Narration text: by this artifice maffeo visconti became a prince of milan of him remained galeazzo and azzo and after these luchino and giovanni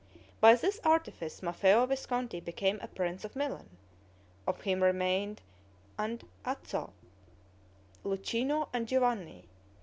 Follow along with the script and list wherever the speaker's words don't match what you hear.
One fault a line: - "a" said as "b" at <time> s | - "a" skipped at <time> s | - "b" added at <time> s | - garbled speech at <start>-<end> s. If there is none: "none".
- "galeazzo" skipped at 5.4 s
- "and after these" skipped at 6.9 s